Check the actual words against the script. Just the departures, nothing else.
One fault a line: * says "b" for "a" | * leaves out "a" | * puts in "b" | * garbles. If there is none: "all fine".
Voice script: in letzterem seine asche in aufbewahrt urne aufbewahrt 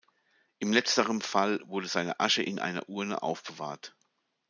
* puts in "fall wurde"
* says "einer" for "aufbewahrt"